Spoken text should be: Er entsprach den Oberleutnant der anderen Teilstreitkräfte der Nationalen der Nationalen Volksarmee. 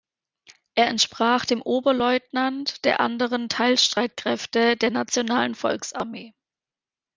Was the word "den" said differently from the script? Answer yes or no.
yes